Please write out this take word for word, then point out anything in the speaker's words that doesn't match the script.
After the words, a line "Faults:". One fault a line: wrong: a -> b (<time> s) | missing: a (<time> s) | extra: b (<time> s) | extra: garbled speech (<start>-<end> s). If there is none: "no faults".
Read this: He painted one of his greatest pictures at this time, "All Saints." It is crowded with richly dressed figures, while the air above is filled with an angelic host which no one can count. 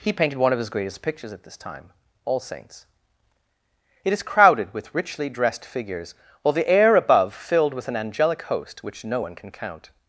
He painted one of his greatest pictures at this time, "All Saints." It is crowded with richly dressed figures, while the air above filled with an angelic host which no one can count.
Faults:
missing: is (7.3 s)